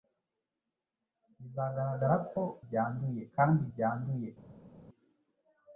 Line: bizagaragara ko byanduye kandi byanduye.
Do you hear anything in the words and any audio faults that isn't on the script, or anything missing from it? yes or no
no